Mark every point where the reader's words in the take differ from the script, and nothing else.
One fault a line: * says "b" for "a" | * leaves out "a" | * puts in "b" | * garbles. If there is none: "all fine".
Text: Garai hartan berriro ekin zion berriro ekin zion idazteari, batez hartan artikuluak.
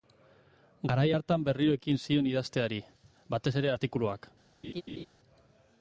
* leaves out "berriro ekin zion"
* says "ere" for "hartan"